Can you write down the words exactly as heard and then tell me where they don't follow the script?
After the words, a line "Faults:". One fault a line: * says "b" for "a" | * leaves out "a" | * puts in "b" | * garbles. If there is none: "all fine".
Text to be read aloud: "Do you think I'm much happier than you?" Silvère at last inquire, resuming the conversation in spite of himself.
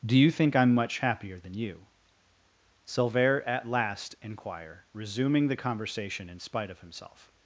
"Do you think I'm much happier than you?" Silvère at last inquire, resuming the conversation in spite of himself.
Faults:
all fine